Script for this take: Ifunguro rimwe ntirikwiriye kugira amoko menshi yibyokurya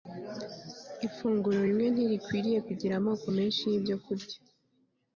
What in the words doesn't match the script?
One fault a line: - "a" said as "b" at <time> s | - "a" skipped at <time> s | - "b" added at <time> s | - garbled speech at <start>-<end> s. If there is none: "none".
none